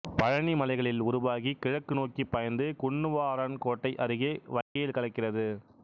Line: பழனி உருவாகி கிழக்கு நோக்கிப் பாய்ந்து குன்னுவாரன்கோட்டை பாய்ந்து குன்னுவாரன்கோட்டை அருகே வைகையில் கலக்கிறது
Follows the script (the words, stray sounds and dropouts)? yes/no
no